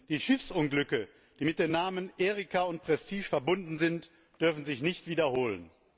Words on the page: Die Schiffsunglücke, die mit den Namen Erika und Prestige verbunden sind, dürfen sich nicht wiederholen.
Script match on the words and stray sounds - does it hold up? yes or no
yes